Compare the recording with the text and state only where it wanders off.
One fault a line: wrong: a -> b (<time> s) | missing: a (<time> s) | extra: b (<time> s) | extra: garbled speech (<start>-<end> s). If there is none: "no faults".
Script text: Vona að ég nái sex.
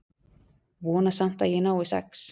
extra: samt (1.2 s)